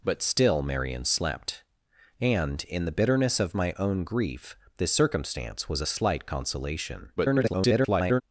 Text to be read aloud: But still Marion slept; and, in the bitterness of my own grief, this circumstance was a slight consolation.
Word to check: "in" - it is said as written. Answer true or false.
true